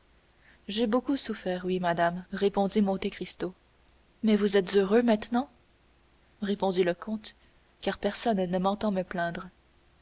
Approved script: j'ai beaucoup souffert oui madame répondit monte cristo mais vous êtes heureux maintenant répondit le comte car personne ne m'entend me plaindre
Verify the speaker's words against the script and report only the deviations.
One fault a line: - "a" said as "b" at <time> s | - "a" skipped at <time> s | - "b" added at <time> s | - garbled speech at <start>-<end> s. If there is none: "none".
none